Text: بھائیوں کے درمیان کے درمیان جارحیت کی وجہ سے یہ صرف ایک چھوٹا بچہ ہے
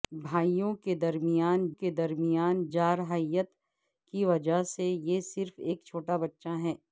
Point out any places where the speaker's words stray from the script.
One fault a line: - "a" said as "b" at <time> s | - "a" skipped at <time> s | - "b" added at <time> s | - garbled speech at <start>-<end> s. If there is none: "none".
none